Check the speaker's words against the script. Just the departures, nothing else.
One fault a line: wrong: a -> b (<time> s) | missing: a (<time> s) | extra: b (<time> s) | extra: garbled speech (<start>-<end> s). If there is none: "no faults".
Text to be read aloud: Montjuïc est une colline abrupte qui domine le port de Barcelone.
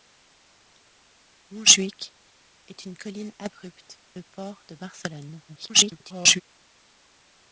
missing: qui domine (4.0 s)
extra: garbled speech (5.5-6.4 s)